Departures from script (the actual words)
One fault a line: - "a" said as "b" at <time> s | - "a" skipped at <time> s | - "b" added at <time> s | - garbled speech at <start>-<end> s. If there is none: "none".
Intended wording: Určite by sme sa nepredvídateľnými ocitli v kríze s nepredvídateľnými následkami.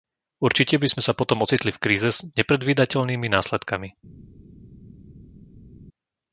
- "nepredvídateľnými" said as "potom" at 1.1 s